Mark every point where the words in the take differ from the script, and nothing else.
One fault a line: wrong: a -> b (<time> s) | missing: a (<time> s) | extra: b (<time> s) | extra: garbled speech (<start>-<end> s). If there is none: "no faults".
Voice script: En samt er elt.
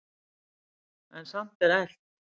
no faults